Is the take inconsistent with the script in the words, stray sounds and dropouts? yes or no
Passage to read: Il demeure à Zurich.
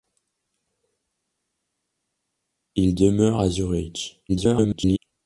yes